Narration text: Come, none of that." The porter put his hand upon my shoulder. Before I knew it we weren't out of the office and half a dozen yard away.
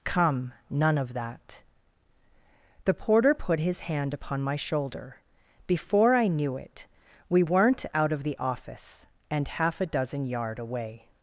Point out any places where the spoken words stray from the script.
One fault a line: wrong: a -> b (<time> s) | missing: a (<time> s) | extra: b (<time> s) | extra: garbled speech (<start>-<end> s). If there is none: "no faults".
no faults